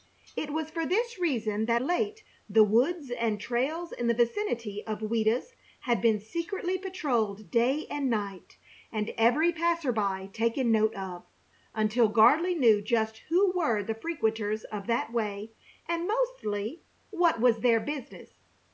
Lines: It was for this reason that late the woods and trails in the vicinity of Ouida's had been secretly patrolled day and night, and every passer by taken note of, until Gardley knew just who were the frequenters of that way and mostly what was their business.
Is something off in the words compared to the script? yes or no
no